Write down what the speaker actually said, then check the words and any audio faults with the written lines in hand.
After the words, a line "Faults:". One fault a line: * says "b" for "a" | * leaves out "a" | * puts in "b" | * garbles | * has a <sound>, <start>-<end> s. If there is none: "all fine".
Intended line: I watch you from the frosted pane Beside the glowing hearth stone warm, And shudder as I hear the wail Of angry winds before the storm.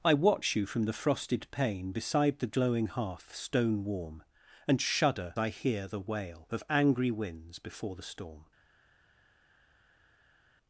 I watch you from the frosted pane Beside the glowing hearth stone warm, And shudder I hear the wail Of angry winds before the storm.
Faults:
* leaves out "as"